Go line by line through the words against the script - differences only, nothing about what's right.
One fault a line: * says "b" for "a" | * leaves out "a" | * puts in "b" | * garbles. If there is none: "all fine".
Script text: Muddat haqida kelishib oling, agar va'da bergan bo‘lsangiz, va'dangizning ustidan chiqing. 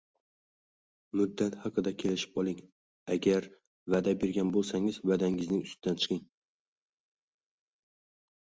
all fine